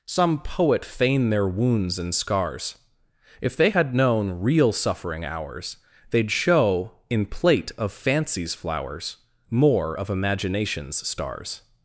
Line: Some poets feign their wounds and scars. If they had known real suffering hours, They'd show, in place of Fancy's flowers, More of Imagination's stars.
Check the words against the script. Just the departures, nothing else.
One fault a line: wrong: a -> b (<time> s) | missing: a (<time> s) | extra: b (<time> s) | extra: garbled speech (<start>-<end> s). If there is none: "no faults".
wrong: poets -> poet (0.4 s)
wrong: place -> plate (7.3 s)